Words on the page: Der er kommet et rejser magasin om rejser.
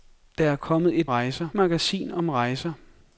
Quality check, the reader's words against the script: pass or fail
pass